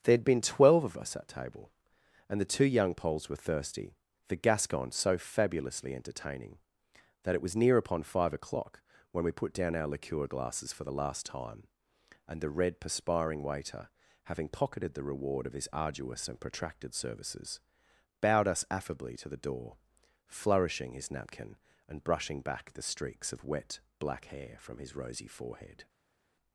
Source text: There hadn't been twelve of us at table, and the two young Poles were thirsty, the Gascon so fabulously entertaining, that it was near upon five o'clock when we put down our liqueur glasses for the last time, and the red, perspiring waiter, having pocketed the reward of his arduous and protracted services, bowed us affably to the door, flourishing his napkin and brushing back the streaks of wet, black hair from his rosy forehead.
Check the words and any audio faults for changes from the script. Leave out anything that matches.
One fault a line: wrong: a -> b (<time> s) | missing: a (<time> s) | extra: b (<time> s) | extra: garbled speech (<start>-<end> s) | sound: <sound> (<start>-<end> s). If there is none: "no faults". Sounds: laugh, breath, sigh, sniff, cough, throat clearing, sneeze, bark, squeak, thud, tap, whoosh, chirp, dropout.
wrong: hadn't -> had (0.1 s)